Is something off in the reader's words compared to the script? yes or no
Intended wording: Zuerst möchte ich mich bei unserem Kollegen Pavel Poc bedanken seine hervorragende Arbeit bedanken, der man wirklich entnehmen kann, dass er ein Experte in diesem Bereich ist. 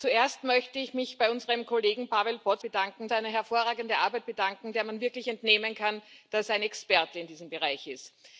no